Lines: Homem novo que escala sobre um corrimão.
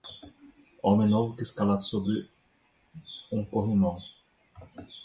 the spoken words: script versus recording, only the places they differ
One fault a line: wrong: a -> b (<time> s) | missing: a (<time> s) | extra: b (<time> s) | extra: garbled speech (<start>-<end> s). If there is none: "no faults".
no faults